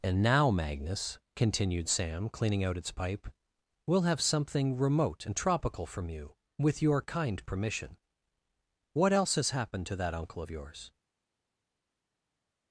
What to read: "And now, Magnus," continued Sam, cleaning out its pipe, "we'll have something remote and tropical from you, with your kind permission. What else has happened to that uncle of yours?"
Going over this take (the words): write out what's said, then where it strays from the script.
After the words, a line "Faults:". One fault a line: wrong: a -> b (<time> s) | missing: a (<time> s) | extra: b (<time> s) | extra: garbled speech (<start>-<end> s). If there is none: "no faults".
"And now, Magnus," continued Sam, cleaning out its pipe, "we'll have something remote and tropical from you, with your kind permission. What else has happened to that uncle of yours?"
Faults:
no faults